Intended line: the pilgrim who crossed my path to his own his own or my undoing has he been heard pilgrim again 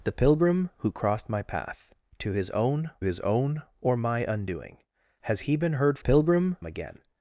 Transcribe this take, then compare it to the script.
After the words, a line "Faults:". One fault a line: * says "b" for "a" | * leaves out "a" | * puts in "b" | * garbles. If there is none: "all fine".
the pilgrim who crossed my path to his own his own or my undoing has he been heard pilgrim again
Faults:
all fine